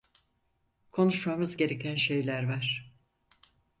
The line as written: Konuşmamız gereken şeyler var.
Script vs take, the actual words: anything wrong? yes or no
no